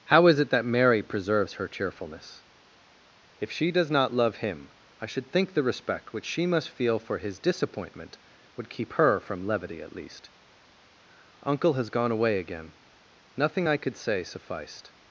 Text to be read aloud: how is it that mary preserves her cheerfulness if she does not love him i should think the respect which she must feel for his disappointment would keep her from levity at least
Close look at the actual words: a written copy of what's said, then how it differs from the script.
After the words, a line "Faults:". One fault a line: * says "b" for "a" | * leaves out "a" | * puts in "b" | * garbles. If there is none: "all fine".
how is it that mary preserves her cheerfulness if she does not love him i should think the respect which she must feel for his disappointment would keep her from levity at least uncle has gone away again nothing i could say sufficed
Faults:
* puts in "uncle has gone away again nothing i could say sufficed"